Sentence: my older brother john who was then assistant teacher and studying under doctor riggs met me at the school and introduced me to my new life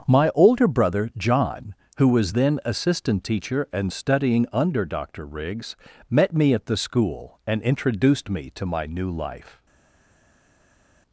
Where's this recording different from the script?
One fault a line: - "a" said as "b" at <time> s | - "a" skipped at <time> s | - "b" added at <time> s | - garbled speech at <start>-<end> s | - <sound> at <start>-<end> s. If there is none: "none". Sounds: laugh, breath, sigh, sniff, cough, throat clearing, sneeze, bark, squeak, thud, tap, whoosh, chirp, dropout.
none